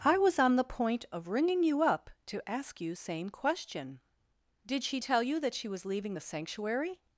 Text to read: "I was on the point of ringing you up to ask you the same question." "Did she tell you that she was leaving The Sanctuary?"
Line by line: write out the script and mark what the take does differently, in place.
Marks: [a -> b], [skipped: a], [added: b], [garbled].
"I was on the point of ringing you up to ask you [skipped: the] same question." "Did she tell you that she was leaving The Sanctuary?"